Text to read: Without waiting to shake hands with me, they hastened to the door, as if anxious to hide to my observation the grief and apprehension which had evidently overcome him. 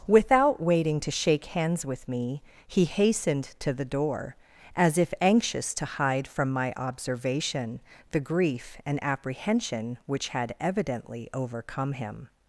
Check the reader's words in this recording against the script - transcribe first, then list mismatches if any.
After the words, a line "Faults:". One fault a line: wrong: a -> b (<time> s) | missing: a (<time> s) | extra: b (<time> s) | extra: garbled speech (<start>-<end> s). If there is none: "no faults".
Without waiting to shake hands with me, he hastened to the door, as if anxious to hide from my observation the grief and apprehension which had evidently overcome him.
Faults:
wrong: they -> he (2.7 s)
wrong: to -> from (6.3 s)